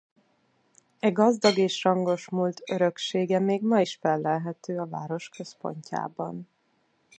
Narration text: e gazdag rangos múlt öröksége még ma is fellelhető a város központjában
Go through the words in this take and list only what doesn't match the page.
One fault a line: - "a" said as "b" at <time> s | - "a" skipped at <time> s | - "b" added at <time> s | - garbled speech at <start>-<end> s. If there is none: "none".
- "és" added at 1.6 s